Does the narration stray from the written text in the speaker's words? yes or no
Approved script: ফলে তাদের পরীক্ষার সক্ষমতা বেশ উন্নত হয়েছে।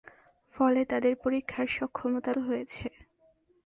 yes